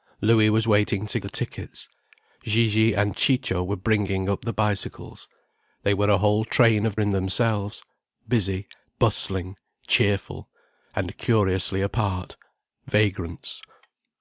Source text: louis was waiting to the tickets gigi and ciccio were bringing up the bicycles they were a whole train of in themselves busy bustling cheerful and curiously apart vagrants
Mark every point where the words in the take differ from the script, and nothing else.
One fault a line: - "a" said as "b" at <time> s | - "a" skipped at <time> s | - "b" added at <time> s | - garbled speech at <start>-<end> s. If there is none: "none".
none